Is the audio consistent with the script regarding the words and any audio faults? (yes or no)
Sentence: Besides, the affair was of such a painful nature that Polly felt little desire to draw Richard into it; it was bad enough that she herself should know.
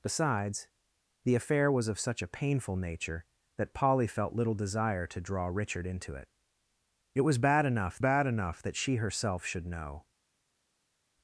no